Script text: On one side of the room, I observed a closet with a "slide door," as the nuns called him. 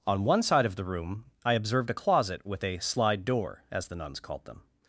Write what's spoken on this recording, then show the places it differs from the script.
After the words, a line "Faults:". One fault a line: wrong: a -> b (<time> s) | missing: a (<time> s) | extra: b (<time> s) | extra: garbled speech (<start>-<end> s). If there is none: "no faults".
On one side of the room, I observed a closet with a "slide door," as the nuns called them.
Faults:
wrong: him -> them (4.5 s)